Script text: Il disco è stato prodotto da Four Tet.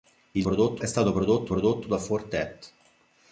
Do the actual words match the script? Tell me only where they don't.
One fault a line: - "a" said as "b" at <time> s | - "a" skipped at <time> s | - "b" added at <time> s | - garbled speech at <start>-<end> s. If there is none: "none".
- "disco" said as "prodotto" at 0.4 s
- "prodotto" added at 1.5 s